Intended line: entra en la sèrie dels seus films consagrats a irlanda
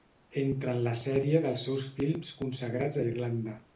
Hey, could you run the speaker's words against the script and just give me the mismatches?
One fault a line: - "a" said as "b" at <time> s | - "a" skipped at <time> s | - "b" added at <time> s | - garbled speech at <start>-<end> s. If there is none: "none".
none